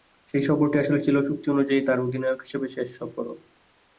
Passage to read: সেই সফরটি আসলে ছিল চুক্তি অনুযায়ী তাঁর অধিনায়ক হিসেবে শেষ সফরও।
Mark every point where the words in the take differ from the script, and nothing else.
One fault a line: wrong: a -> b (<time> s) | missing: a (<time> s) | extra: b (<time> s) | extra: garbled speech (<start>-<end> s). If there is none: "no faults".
no faults